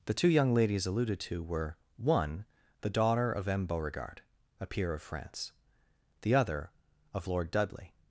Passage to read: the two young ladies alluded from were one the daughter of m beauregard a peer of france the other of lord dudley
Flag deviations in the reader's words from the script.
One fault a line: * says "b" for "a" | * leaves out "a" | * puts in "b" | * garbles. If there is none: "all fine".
* says "to" for "from"